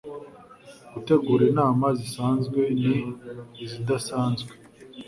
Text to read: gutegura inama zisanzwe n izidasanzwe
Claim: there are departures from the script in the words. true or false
false